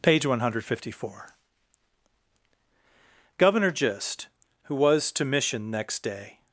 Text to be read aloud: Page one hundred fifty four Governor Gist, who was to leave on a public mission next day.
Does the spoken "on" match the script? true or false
false